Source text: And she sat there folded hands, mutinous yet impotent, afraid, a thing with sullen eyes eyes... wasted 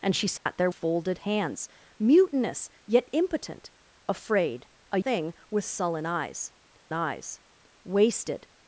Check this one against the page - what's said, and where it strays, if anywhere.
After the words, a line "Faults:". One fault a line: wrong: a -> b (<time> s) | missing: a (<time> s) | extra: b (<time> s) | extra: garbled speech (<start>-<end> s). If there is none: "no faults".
And she sat there folded hands, mutinous yet impotent, afraid, a thing with sullen eyes eyes... wasted
Faults:
no faults